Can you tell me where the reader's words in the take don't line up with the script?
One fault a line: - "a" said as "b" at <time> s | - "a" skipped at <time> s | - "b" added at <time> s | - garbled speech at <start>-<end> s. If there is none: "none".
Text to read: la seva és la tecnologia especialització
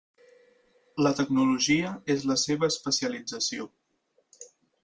- "seva" said as "tecnologia" at 1.2 s
- "tecnologia" said as "seva" at 2.5 s